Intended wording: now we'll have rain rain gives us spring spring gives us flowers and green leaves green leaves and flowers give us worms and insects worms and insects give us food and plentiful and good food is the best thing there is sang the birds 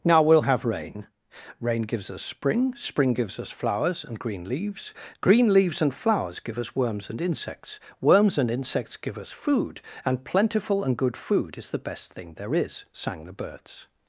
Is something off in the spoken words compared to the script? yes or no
no